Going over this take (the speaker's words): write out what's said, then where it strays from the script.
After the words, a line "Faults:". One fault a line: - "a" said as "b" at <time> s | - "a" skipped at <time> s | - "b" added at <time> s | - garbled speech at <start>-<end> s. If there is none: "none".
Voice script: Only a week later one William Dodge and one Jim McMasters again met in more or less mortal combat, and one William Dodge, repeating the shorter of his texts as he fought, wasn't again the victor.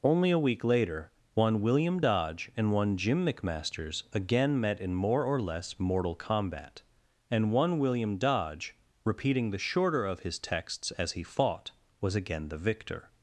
Only a week later one William Dodge and one Jim McMasters again met in more or less mortal combat, and one William Dodge, repeating the shorter of his texts as he fought, was again the victor.
Faults:
- "wasn't" said as "was" at 12.0 s